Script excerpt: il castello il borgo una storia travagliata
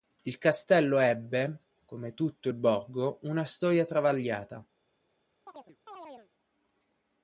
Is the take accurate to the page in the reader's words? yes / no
no